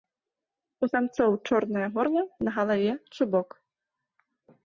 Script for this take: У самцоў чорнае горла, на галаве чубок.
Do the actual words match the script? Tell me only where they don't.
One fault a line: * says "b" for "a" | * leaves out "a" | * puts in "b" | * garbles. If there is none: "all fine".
all fine